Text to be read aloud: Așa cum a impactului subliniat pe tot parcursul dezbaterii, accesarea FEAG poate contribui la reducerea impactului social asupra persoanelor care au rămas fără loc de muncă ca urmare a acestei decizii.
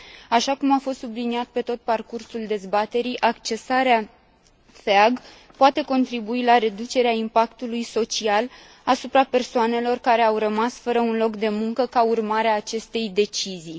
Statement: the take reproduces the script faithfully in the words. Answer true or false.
false